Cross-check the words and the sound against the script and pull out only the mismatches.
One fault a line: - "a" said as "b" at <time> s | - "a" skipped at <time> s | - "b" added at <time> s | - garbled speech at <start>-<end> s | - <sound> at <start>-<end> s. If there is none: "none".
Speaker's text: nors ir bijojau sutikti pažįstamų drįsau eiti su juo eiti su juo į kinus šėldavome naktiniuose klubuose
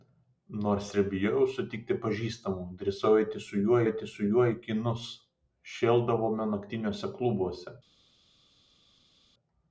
none